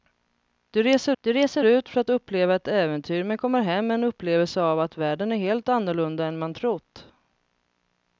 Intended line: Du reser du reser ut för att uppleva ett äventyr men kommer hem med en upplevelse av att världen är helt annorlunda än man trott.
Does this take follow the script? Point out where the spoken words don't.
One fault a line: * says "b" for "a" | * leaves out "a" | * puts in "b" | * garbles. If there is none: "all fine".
all fine